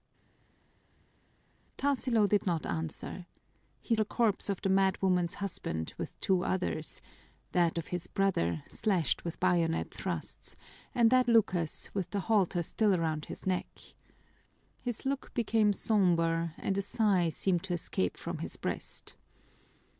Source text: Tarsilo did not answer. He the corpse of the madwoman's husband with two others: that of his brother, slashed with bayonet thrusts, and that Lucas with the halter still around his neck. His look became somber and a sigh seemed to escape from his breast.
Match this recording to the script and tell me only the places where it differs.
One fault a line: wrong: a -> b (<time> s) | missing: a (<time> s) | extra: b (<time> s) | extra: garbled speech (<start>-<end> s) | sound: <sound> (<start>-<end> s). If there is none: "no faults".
no faults